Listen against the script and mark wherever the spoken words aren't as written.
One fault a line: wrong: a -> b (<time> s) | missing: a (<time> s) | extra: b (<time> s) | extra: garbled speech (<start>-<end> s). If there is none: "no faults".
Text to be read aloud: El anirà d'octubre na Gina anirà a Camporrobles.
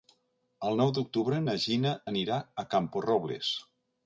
wrong: anirà -> nou (0.8 s)